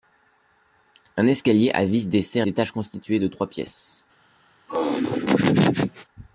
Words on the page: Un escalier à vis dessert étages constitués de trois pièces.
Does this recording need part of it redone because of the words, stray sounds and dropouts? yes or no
yes